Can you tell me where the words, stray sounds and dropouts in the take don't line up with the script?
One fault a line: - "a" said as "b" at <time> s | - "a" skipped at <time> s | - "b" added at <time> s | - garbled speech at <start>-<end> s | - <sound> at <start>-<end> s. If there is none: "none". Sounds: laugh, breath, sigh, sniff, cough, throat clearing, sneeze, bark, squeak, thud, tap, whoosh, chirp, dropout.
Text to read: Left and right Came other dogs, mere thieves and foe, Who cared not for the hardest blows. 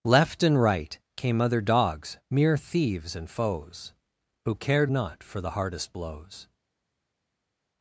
- "foe" said as "foes" at 3.3 s